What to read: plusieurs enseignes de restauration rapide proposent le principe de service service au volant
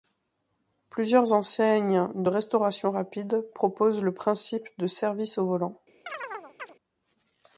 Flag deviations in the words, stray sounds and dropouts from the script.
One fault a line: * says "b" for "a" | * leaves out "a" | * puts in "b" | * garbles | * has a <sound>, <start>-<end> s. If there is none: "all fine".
* leaves out "service"
* has a chirp, 6.1-6.7 s